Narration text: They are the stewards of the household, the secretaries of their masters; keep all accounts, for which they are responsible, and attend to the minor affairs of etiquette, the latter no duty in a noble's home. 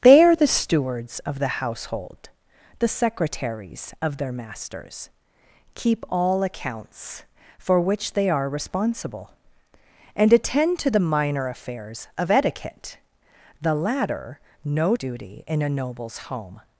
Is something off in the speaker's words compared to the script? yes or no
no